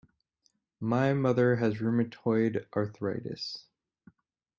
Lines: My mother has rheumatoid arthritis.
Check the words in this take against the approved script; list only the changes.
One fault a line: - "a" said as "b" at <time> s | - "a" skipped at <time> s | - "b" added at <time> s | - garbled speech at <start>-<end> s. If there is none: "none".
none